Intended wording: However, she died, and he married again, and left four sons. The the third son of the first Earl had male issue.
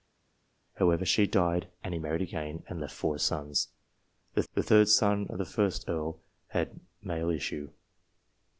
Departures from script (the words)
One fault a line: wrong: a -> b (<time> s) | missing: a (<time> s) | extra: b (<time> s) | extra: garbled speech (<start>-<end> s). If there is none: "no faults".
no faults